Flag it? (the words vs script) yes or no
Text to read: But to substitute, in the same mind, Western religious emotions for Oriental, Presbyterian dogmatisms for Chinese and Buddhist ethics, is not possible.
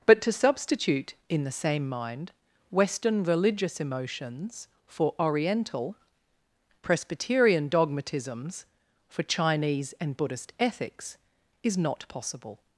no